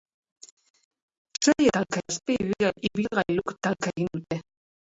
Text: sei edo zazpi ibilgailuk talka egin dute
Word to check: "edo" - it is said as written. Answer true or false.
false